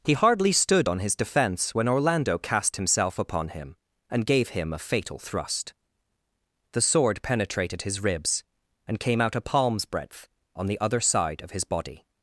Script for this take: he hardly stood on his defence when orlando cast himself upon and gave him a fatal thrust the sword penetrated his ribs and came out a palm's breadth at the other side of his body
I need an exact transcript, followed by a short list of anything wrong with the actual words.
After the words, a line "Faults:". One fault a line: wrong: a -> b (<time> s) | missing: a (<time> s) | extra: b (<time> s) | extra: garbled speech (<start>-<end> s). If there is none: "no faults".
he hardly stood on his defence when orlando cast himself upon him and gave him a fatal thrust the sword penetrated his ribs and came out a palm's breadth on the other side of his body
Faults:
extra: him (3.5 s)
wrong: at -> on (10.5 s)